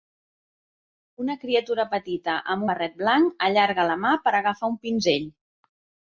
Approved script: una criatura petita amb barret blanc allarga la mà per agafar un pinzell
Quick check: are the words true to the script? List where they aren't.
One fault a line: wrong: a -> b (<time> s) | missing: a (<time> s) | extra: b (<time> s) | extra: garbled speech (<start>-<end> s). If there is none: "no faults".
no faults